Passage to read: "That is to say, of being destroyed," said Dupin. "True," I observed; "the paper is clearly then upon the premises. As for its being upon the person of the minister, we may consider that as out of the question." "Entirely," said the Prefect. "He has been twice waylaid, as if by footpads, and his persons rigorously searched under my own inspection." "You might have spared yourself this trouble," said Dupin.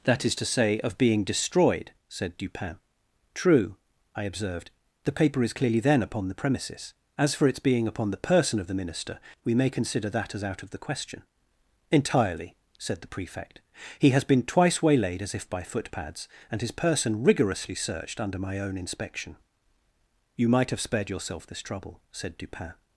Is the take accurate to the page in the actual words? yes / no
no